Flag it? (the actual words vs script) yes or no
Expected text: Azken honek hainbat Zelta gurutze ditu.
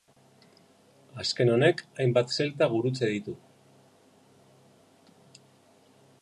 no